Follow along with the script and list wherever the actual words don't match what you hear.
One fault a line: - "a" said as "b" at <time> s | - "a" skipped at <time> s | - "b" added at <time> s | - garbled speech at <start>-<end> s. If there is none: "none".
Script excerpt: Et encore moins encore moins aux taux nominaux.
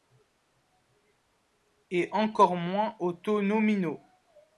- "encore moins" skipped at 3.0 s